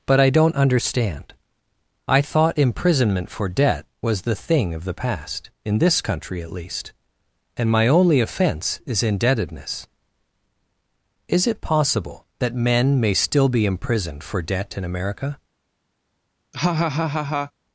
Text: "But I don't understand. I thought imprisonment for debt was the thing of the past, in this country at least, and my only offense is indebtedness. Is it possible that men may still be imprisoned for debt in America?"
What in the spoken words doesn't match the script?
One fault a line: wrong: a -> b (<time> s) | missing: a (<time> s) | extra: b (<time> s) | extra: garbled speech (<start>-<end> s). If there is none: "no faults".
no faults